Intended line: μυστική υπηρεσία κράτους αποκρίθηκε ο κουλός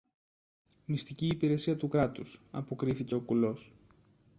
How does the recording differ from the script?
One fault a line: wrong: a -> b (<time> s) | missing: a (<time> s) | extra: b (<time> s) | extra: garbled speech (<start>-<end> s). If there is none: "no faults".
extra: του (1.8 s)